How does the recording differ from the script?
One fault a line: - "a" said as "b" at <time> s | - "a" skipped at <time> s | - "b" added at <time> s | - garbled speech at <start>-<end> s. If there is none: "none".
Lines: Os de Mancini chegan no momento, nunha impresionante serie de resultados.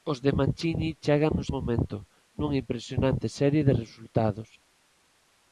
none